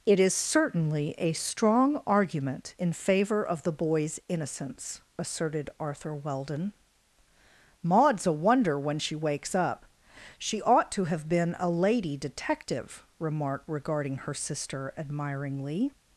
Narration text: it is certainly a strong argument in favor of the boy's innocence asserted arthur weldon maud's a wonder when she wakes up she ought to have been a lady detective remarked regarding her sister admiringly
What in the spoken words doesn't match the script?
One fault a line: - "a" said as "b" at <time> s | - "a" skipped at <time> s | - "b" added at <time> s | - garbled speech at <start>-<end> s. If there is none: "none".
none